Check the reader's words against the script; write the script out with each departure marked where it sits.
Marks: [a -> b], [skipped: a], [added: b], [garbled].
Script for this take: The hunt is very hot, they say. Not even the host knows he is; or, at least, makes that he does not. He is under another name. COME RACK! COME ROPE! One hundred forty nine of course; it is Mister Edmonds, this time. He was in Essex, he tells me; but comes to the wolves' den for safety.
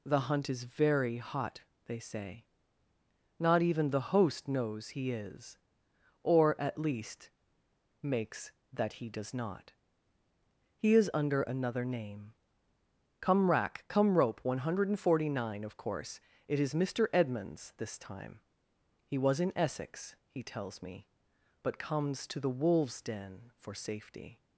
The hunt is very hot, they say. Not even the host knows he is; or, at least, makes that he does not. He is under another name. COME RACK! COME ROPE! One hundred forty nine of course; it is Mister Edmonds, this time. He was in Essex, he tells me; but comes to the wolves' den for safety.